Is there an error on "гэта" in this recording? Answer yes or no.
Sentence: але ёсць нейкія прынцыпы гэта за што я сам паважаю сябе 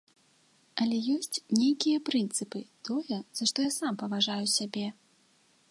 yes